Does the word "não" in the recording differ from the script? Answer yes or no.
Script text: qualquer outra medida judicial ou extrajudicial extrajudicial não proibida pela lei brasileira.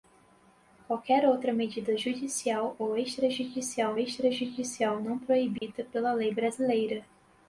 no